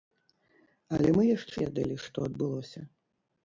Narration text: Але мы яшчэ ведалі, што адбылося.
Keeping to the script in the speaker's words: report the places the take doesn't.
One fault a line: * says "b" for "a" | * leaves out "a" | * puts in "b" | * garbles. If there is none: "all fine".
all fine